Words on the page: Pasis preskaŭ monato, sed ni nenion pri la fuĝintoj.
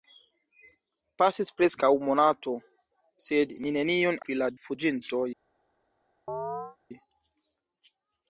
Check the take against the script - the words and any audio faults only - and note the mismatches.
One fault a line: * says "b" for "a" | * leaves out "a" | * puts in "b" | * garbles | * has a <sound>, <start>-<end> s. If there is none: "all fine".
* has a chirp, 6.3-6.8 s